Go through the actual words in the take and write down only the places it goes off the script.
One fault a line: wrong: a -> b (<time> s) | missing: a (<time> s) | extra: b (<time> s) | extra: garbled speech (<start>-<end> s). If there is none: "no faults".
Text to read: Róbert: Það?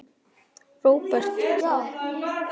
no faults